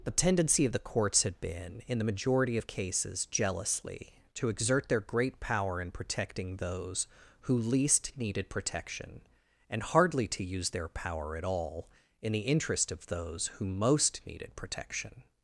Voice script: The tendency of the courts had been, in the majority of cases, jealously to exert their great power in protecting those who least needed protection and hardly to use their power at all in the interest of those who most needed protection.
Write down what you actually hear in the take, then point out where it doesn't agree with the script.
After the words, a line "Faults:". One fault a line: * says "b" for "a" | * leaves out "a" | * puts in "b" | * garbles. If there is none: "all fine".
The tendency of the courts had been, in the majority of cases, jealously to exert their great power in protecting those who least needed protection and hardly to use their power at all in the interest of those who most needed protection.
Faults:
all fine